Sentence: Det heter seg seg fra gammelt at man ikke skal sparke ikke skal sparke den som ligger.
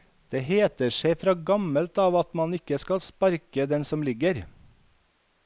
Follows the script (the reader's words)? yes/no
no